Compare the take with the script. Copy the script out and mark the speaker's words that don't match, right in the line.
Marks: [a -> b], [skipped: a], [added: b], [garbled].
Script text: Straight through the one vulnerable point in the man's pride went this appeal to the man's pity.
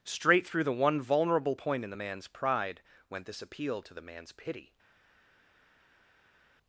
Straight through the one vulnerable point in the man's pride went this appeal to the man's pity.